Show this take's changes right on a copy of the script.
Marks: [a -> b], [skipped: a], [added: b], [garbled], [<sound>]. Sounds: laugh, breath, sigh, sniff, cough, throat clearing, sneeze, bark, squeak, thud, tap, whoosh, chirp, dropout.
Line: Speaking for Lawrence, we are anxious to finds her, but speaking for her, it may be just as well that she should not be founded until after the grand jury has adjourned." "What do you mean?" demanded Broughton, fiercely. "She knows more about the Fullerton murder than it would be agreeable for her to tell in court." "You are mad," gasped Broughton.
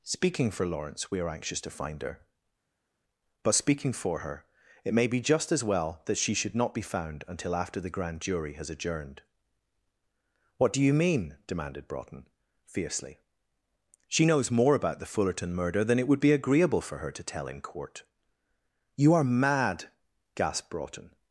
Speaking for Lawrence, we are anxious to [finds -> find] her, but speaking for her, it may be just as well that she should not be [founded -> found] until after the grand jury has adjourned." "What do you mean?" demanded Broughton, fiercely. "She knows more about the Fullerton murder than it would be agreeable for her to tell in court." "You are mad," gasped Broughton.